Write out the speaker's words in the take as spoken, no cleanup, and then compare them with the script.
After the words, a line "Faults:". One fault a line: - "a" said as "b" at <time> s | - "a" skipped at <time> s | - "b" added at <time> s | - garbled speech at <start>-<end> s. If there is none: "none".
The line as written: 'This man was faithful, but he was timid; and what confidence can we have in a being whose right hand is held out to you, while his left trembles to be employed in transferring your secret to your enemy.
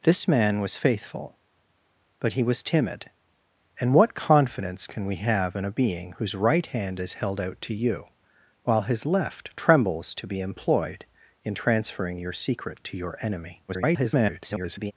'This man was faithful, but he was timid; and what confidence can we have in a being whose right hand is held out to you, while his left trembles to be employed in transferring your secret to your enemy. [garbled]
Faults:
- garbled speech at 13.7-14.9 s